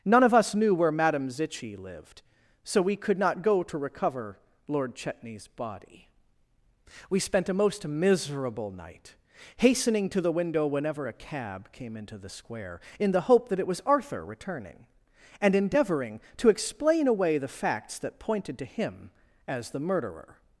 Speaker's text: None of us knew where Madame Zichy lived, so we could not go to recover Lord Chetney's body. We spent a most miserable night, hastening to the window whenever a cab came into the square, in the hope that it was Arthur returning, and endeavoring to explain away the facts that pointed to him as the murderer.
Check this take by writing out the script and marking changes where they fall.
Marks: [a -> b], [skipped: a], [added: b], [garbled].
None of us knew where Madame Zichy lived, so we could not go to recover Lord Chetney's body. We spent a most miserable night, hastening to the window whenever a cab came into the square, in the hope that it was Arthur returning, and endeavoring to explain away the facts that pointed to him as the murderer.